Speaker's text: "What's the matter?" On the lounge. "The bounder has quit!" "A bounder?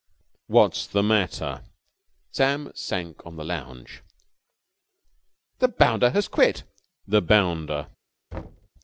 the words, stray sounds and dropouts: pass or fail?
fail